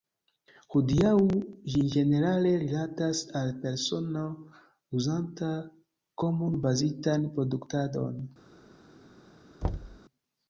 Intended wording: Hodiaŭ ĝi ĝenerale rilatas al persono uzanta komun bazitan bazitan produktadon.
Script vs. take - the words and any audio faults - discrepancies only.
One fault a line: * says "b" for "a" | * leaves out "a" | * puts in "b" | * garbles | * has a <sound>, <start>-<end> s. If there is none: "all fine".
* leaves out "bazitan"
* has a thud, 9.6-10.0 s